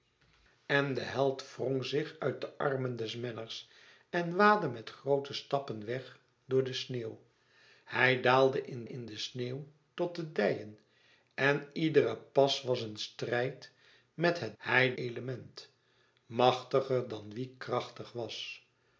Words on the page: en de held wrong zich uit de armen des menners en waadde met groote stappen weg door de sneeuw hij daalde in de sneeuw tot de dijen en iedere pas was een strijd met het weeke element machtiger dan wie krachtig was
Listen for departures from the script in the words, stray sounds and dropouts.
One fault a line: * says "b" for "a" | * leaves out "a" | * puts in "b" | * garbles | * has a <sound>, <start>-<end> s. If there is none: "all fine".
* puts in "in"
* says "hij" for "weeke"